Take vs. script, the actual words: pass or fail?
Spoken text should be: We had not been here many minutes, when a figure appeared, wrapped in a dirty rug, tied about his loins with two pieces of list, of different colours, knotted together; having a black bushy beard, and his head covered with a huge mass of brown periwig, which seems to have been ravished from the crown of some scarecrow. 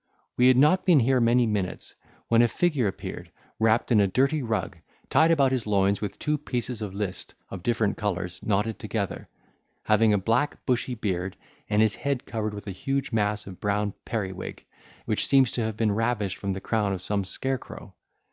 pass